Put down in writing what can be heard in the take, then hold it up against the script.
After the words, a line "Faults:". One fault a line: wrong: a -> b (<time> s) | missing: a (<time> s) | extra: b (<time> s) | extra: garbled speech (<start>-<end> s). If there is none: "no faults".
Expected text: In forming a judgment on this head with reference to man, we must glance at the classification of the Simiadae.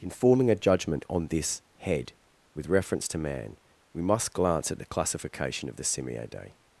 In forming a judgment on this head with reference to man, we must glance at the classification of the Simiadae.
Faults:
no faults